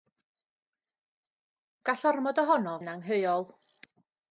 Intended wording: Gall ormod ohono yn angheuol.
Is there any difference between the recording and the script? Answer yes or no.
no